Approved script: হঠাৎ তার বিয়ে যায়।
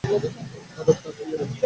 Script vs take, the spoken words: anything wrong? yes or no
no